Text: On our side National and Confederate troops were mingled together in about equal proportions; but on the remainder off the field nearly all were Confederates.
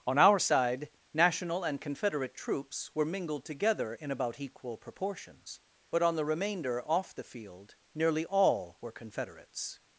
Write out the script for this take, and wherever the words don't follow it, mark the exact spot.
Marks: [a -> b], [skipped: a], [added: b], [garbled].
On our side National and Confederate troops were mingled together in about equal proportions; but on the remainder off the field nearly all were Confederates.